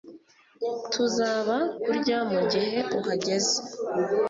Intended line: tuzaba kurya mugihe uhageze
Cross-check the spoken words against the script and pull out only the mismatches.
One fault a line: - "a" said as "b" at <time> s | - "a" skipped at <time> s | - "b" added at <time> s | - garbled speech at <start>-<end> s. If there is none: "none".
none